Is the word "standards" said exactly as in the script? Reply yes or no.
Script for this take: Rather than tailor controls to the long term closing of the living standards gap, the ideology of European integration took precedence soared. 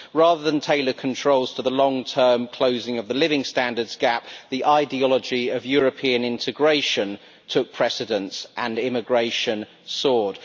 yes